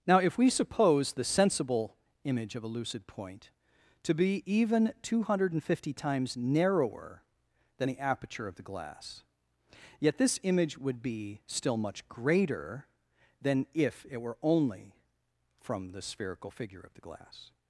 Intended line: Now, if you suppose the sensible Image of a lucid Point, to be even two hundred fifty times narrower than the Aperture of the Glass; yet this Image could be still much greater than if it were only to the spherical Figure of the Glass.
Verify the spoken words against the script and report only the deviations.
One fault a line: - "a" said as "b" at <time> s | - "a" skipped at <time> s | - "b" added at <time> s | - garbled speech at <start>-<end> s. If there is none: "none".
- "you" said as "we" at 0.4 s
- "could" said as "would" at 10.8 s
- "to" said as "from" at 15.6 s